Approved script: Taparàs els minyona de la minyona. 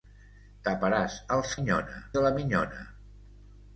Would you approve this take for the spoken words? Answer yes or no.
yes